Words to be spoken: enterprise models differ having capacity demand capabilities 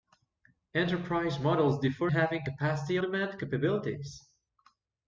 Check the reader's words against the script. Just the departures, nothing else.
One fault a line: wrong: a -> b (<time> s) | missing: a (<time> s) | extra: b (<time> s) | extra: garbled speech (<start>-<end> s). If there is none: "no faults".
no faults